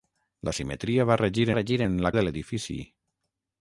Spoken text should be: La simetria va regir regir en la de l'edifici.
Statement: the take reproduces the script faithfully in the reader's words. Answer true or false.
true